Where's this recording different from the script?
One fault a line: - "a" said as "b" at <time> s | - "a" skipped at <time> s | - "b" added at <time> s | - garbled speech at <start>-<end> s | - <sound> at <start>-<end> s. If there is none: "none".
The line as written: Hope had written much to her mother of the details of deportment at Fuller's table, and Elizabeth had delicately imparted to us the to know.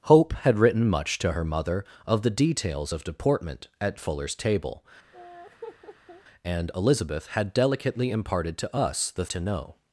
- laugh at 5.1-6.2 s